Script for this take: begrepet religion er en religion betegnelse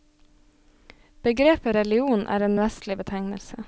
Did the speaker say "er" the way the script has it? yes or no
yes